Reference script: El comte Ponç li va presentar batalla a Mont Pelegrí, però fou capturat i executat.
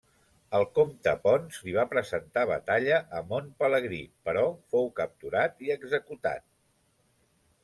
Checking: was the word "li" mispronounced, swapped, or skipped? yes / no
no